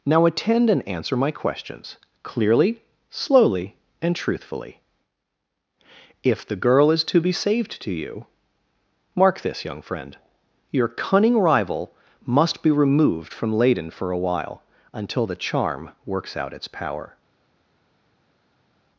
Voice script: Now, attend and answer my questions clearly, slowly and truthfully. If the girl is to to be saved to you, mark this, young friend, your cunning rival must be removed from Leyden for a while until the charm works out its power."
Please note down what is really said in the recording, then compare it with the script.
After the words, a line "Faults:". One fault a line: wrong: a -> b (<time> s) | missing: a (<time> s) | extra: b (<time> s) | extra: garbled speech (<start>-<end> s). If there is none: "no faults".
Now, attend and answer my questions clearly, slowly and truthfully. If the girl is to be saved to you, mark this, young friend, your cunning rival must be removed from Leyden for a while until the charm works out its power."
Faults:
missing: to (7.2 s)